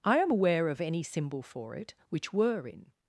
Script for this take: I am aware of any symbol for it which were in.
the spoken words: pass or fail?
pass